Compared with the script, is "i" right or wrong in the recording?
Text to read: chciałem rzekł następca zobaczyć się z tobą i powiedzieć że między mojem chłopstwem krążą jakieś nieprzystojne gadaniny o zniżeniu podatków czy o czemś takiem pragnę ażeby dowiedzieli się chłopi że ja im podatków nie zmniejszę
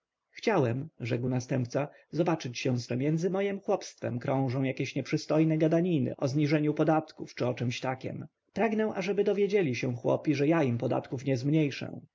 wrong